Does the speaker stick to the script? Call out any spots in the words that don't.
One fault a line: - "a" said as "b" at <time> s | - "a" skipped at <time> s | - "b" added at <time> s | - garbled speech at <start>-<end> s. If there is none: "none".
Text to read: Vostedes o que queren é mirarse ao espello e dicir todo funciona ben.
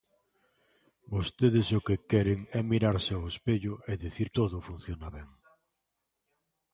none